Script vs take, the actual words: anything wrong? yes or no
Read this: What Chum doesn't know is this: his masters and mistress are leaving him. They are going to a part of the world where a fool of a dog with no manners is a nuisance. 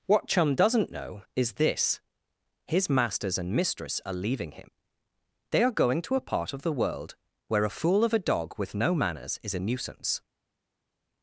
no